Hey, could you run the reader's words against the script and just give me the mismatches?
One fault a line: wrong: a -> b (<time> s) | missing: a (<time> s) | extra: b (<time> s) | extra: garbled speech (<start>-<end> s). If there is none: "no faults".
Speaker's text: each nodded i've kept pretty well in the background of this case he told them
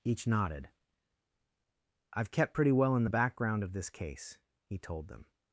no faults